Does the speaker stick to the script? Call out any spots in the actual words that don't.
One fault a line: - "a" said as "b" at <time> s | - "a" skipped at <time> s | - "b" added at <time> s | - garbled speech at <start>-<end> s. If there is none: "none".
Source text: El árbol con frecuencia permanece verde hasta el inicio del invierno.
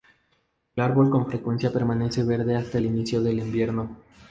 none